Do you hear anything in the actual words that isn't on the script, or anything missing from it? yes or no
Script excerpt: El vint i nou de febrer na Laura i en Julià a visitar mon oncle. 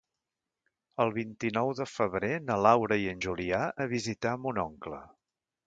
no